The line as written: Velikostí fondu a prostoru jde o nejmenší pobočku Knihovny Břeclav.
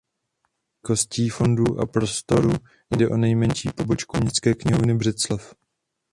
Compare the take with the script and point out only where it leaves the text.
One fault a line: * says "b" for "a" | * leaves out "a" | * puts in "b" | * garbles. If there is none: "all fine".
* puts in "Městské"